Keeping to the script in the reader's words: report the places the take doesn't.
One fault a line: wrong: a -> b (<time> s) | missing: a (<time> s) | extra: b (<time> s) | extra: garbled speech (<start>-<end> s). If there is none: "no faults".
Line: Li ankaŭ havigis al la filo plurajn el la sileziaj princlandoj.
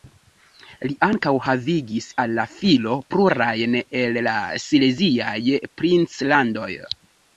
no faults